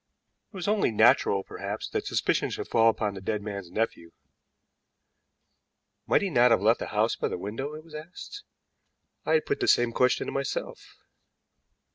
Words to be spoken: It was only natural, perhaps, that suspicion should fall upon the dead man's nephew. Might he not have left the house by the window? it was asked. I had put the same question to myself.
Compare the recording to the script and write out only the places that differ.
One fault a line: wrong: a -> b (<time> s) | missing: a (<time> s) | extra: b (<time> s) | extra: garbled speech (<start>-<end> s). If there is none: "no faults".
no faults